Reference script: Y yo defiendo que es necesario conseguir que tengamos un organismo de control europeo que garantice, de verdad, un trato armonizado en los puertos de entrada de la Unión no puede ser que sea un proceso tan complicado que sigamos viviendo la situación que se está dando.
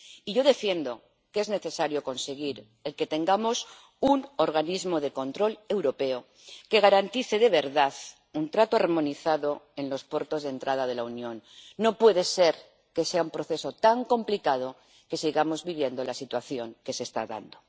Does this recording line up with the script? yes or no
yes